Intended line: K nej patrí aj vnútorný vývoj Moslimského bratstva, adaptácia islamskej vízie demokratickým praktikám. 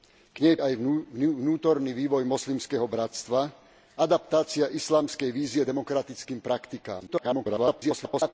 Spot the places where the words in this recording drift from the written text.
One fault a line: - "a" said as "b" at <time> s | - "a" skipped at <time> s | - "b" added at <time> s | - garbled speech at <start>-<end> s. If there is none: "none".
- "patrí" skipped at 0.6 s
- garbled speech at 7.1-8.3 s